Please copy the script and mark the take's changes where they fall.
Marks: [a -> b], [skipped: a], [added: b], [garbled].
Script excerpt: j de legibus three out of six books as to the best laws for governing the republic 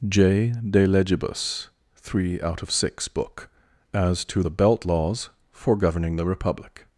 j de legibus three out of six [books -> book] as to the [best -> belt] laws for governing the republic